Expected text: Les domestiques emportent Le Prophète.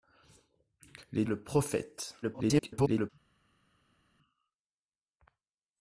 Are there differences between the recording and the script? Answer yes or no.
yes